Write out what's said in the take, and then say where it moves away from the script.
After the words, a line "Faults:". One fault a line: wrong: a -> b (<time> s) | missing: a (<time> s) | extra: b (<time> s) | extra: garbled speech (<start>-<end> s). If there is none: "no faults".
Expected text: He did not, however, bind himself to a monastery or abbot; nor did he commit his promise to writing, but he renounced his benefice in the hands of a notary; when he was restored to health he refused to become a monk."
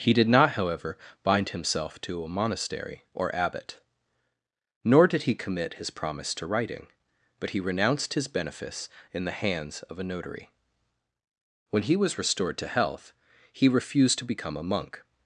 He did not, however, bind himself to a monastery or abbot; nor did he commit his promise to writing, but he renounced his benefice in the hands of a notary; when he was restored to health he refused to become a monk."
Faults:
no faults